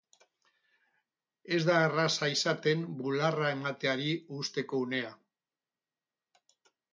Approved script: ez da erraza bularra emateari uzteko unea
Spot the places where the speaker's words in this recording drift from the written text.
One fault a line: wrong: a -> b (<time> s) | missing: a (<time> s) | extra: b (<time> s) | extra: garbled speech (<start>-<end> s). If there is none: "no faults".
extra: izaten (2.4 s)